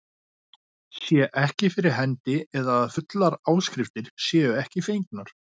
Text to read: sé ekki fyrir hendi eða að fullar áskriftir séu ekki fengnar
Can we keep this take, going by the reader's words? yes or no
yes